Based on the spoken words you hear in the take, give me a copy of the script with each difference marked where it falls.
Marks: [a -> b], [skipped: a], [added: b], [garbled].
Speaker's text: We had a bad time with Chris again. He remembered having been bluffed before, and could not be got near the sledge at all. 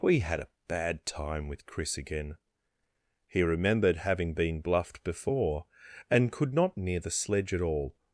We had a bad time with Chris again. He remembered having been bluffed before, and could not [skipped: be got] near the sledge at all.